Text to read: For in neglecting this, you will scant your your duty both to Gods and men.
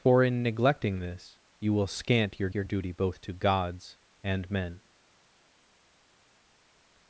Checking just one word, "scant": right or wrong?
right